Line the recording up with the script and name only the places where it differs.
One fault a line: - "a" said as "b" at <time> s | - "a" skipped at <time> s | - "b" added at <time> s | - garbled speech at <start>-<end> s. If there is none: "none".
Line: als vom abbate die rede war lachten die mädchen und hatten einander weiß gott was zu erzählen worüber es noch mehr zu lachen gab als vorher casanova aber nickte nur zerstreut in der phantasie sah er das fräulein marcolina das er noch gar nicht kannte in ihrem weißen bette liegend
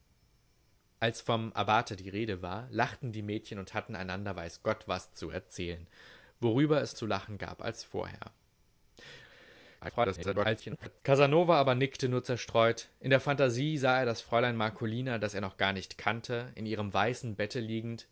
- "noch mehr" skipped at 7.0 s
- garbled speech at 9.8-11.0 s